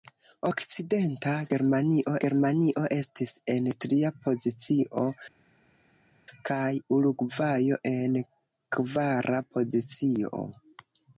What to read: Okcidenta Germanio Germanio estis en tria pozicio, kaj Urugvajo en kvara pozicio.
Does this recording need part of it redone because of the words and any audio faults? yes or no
no